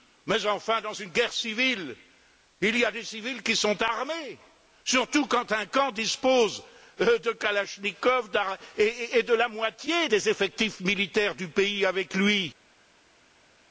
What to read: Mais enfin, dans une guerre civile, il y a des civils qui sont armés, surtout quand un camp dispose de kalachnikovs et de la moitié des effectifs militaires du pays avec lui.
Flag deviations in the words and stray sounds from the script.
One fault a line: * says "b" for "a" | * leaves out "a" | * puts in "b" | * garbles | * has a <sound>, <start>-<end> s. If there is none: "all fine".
all fine